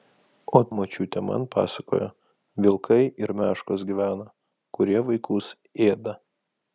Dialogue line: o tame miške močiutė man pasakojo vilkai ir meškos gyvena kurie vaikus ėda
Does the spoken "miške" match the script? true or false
false